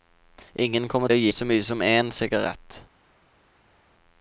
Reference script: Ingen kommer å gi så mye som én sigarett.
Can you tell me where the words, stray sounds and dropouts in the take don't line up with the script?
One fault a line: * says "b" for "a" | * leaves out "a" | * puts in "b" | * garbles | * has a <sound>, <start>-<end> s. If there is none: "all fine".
all fine